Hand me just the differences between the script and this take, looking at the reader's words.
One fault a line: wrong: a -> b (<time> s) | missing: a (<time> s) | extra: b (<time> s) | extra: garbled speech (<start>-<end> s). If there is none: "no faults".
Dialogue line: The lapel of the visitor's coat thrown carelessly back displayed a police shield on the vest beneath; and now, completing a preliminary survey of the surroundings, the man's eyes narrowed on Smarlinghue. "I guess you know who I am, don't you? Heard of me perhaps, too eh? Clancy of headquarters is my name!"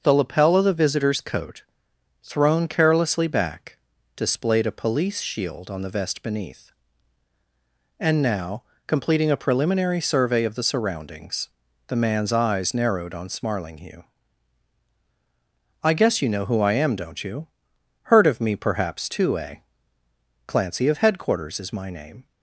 no faults